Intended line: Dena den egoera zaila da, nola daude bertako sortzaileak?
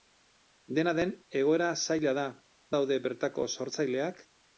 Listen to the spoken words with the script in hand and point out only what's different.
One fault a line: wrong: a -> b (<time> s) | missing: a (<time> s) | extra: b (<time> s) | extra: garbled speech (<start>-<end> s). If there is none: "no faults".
missing: nola (2.2 s)